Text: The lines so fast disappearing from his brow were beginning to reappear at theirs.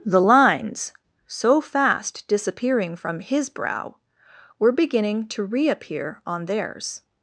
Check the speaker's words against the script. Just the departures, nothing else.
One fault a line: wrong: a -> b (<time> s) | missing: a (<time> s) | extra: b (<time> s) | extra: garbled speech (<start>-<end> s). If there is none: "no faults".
wrong: at -> on (6.2 s)